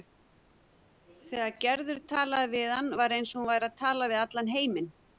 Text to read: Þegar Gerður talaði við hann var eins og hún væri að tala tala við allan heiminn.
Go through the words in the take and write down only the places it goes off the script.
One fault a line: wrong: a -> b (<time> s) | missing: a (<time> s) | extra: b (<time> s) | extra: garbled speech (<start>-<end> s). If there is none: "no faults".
missing: tala (4.1 s)